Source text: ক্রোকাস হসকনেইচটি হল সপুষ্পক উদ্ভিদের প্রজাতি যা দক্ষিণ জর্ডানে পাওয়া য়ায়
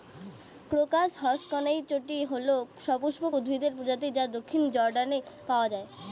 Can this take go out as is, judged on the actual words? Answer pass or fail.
pass